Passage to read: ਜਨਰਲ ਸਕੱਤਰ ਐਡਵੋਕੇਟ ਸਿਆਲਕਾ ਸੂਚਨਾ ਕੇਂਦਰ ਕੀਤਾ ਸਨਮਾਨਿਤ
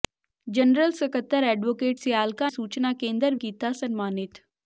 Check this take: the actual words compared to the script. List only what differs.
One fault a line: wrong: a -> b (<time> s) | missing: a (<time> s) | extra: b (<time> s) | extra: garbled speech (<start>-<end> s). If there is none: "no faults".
no faults